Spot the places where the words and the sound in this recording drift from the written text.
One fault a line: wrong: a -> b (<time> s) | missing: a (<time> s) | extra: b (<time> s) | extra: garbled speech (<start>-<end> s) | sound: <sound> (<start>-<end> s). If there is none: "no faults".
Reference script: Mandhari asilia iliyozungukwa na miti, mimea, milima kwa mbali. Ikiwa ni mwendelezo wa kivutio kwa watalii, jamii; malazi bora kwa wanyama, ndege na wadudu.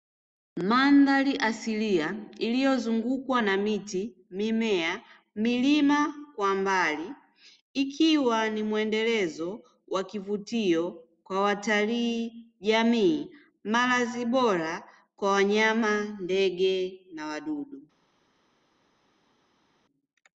no faults